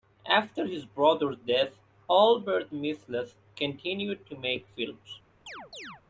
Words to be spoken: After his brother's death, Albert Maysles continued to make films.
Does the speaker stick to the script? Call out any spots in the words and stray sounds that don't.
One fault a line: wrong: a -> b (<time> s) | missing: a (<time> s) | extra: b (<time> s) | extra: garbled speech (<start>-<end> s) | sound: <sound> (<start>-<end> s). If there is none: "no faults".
sound: chirp (5.5-6.0 s)